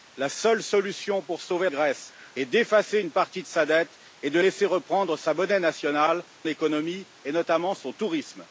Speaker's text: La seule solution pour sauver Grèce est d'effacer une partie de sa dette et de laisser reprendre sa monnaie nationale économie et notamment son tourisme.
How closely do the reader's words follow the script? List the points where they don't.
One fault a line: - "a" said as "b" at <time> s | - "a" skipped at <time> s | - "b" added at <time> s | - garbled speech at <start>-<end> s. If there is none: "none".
none